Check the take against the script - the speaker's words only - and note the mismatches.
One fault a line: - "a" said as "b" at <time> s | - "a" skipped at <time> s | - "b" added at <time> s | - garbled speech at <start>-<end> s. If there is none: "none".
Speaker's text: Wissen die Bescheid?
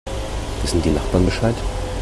- "Nachbarn" added at 0.9 s